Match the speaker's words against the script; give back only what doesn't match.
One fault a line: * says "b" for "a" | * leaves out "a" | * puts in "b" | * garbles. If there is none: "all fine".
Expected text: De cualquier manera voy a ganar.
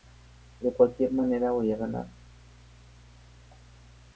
all fine